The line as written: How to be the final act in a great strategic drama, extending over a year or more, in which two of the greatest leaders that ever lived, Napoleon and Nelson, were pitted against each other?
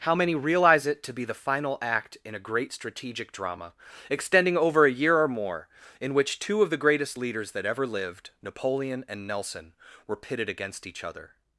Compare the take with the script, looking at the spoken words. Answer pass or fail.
fail